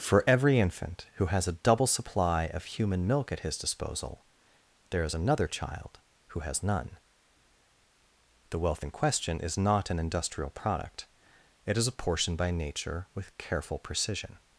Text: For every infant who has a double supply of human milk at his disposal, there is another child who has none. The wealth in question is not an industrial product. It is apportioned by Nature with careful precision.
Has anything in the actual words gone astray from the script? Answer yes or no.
no